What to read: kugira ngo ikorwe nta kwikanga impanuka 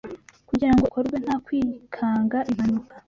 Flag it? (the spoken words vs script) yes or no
no